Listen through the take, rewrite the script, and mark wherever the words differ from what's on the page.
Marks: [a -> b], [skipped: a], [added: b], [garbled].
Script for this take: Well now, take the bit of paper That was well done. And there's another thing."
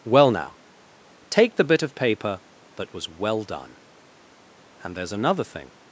Well now, take the bit of paper That was well done. And there's another thing."